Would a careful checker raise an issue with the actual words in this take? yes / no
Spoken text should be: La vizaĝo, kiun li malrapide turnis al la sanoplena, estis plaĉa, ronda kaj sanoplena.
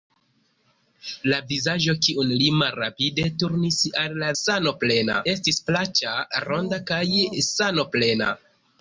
no